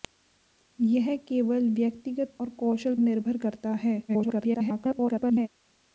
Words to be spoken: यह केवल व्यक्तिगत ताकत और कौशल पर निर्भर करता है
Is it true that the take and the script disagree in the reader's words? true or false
true